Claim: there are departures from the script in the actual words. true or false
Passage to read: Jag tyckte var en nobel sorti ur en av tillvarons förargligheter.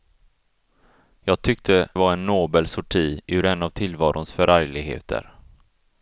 false